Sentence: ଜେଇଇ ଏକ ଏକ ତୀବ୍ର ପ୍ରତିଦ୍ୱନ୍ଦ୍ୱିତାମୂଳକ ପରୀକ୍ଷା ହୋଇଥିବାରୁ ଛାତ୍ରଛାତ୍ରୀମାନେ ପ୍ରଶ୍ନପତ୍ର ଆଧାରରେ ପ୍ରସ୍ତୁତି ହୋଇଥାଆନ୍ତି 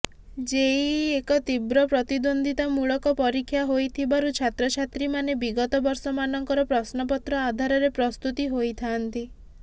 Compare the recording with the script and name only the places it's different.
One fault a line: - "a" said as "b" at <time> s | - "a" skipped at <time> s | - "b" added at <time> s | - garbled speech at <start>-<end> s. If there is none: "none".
- "ଏକ" skipped at 1.4 s
- "ବିଗତ ବର୍ଷମାନଙ୍କର" added at 5.4 s